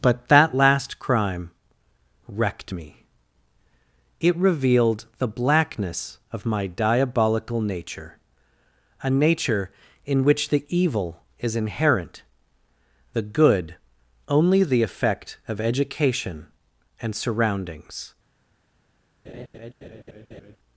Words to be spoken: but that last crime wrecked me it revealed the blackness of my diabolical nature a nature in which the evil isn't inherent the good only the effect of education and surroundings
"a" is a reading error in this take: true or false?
false